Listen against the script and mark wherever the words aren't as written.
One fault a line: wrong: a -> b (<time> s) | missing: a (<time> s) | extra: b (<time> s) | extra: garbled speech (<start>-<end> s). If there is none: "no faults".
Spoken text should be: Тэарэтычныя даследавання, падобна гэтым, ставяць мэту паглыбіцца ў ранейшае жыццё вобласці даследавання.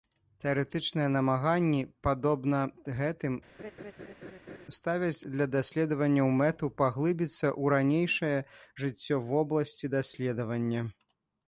wrong: даследавання -> намаганні (1.1 s)
extra: для даследаванняў (5.4 s)